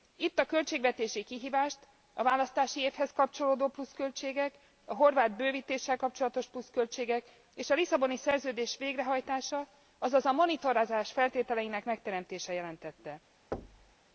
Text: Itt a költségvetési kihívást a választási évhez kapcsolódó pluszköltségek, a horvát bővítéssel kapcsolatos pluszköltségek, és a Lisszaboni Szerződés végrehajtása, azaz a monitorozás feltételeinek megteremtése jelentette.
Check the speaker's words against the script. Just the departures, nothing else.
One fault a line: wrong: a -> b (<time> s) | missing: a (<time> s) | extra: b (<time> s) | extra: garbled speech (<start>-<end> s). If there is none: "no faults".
no faults